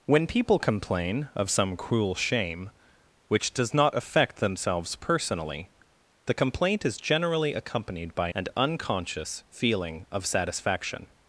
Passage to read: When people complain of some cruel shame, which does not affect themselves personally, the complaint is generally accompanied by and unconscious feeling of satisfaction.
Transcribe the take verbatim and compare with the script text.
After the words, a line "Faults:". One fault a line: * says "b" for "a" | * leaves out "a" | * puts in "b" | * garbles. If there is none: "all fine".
When people complain of some cruel shame, which does not affect themselves personally, the complaint is generally accompanied by and unconscious feeling of satisfaction.
Faults:
all fine